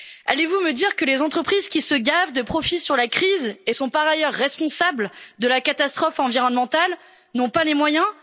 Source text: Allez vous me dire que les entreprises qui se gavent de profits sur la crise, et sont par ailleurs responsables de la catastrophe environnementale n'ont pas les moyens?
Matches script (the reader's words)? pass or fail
pass